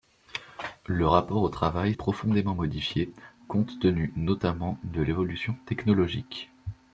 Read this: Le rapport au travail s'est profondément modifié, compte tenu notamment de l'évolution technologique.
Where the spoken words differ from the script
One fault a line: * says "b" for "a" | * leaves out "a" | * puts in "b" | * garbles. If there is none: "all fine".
* leaves out "s'est"